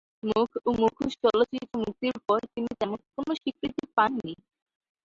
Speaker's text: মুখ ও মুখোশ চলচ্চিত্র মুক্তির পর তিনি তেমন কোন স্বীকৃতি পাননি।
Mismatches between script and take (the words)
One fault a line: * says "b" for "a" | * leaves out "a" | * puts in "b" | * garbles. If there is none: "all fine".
all fine